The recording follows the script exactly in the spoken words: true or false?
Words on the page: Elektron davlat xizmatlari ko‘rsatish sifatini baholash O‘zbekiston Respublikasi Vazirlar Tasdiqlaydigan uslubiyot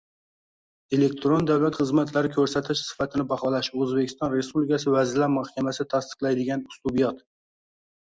false